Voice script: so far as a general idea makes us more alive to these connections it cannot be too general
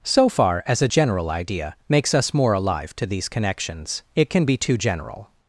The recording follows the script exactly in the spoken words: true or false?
false